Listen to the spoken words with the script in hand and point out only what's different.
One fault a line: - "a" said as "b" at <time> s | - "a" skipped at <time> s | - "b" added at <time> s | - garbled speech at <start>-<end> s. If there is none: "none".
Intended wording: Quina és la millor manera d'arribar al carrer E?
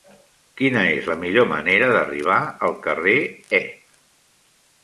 none